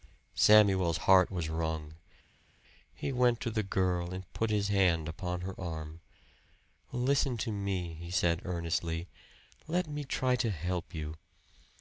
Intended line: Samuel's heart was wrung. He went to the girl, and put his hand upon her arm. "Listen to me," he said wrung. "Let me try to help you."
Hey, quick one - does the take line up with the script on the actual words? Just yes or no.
no